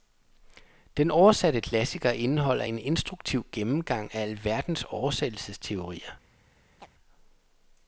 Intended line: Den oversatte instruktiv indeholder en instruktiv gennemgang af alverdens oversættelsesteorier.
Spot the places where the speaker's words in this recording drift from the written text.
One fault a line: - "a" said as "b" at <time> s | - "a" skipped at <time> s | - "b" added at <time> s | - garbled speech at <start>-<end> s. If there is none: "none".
- "instruktiv" said as "klassiker" at 1.6 s